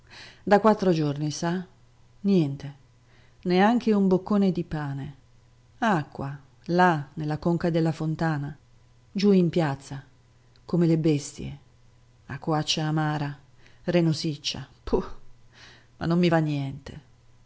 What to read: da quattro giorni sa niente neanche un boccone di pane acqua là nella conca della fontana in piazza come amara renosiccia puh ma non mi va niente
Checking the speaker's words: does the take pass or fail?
fail